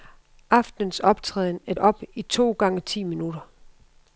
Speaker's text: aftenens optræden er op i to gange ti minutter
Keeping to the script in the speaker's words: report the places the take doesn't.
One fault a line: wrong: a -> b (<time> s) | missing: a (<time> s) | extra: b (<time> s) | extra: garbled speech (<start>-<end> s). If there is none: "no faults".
no faults